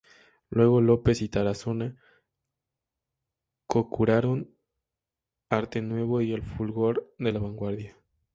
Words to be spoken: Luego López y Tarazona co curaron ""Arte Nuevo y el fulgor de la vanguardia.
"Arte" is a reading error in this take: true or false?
false